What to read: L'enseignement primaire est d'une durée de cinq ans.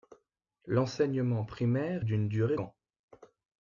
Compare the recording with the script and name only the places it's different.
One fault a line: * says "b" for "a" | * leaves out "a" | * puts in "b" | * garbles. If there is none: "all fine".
* leaves out "est"
* leaves out "de cinq"